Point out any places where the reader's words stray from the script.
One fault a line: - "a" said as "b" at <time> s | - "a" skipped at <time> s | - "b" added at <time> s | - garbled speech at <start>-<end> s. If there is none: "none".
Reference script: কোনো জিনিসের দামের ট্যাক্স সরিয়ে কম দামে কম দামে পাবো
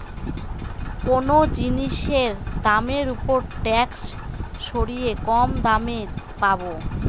- "ওপর" added at 3.1 s
- "কম দামে" skipped at 6.0 s